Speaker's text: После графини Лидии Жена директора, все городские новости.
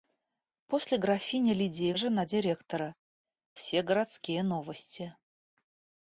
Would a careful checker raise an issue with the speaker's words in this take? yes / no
no